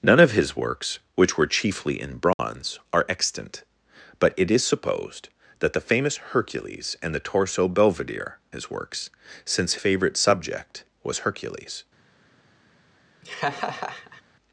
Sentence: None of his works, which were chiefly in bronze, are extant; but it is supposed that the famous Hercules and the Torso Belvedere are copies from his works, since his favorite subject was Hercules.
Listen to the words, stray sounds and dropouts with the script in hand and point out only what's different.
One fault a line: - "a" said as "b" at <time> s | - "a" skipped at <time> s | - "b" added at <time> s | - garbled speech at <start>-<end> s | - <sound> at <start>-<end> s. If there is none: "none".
- dropout at 2.3-2.4 s
- "are copies from" skipped at 8.4 s
- "his" skipped at 9.8 s
- laugh at 13.2-14.2 s